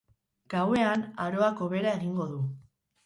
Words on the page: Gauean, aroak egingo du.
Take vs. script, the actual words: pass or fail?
fail